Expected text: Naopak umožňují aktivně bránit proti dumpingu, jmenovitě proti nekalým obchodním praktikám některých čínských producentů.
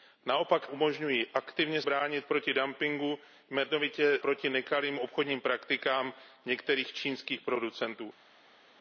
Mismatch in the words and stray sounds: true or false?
false